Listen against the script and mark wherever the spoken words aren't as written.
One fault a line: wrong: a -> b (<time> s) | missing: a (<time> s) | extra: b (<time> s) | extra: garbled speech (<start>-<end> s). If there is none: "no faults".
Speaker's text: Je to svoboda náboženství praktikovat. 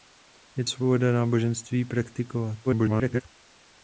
missing: to (0.7 s)
extra: garbled speech (2.7-3.2 s)